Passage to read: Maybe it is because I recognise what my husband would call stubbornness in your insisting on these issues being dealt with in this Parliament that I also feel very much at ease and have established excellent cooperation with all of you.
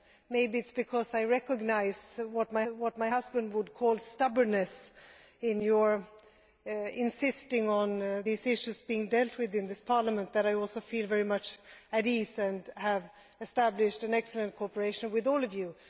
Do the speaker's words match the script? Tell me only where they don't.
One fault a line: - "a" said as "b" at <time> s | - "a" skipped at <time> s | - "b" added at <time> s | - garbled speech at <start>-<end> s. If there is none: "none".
- "what my" added at 2.7 s